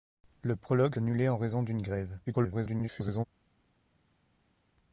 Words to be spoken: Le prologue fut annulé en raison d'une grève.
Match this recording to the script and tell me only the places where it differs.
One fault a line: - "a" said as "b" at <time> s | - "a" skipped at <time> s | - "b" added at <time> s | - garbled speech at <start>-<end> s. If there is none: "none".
- "fut" skipped at 0.9 s
- garbled speech at 2.3-3.3 s